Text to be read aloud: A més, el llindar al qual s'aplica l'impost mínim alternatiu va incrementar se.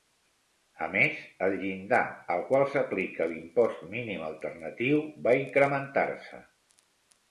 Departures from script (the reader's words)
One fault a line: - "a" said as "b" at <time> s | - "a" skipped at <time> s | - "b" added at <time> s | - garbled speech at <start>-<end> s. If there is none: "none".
none